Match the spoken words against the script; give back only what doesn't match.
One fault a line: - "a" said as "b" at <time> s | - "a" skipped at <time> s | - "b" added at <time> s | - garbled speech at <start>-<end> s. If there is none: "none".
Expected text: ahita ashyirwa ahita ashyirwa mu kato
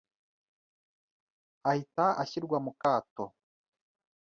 - "ahita ashyirwa" skipped at 2.6 s